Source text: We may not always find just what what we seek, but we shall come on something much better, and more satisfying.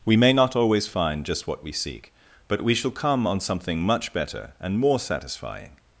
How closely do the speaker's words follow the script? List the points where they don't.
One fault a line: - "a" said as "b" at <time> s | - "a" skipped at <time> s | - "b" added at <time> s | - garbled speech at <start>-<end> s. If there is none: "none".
- "what" skipped at 1.6 s